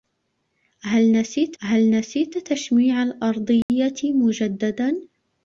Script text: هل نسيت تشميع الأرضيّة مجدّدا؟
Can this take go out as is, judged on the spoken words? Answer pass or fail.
fail